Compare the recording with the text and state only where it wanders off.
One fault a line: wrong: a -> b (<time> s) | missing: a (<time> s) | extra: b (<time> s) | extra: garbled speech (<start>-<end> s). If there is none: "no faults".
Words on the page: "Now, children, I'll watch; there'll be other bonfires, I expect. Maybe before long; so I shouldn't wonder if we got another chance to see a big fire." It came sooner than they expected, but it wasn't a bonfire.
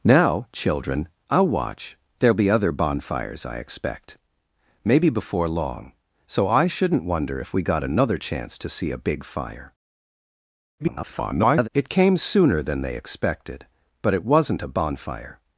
extra: garbled speech (10.8-11.7 s)